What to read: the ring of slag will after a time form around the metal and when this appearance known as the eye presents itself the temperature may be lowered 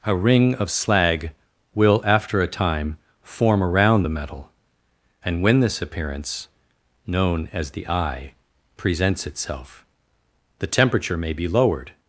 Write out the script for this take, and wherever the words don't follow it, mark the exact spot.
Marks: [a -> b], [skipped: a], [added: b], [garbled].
[the -> a] ring of slag will after a time form around the metal and when this appearance known as the eye presents itself the temperature may be lowered